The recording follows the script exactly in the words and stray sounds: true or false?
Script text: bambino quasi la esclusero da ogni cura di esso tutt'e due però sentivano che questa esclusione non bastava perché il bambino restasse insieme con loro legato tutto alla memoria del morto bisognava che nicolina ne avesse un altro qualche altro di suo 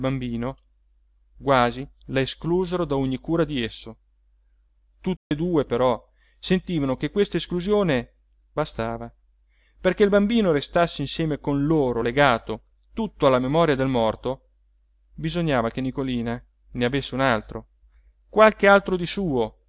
false